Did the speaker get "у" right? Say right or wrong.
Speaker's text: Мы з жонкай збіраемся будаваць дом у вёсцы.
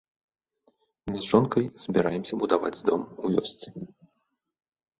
right